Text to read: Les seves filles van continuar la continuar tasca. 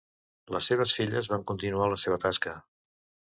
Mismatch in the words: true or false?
true